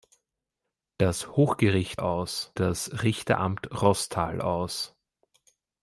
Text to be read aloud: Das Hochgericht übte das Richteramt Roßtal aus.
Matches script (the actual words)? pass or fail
fail